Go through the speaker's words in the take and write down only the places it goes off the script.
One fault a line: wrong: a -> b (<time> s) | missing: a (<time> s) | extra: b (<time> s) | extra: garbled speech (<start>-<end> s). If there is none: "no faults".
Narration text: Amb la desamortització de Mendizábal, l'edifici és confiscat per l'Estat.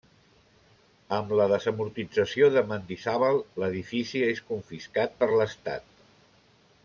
no faults